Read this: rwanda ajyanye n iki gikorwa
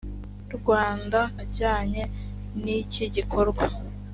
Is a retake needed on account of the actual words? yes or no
no